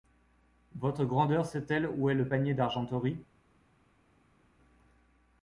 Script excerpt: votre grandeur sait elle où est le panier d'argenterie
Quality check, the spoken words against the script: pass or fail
pass